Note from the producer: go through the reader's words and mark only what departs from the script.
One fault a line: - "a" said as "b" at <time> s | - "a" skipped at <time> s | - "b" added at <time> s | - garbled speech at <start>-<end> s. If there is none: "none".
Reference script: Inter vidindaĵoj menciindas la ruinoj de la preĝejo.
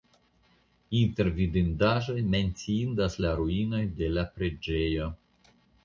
none